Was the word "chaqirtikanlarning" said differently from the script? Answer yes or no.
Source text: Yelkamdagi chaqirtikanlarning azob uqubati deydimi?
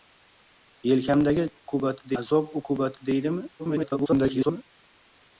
yes